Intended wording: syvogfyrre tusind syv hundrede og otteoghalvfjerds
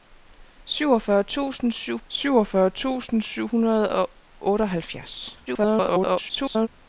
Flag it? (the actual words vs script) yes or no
yes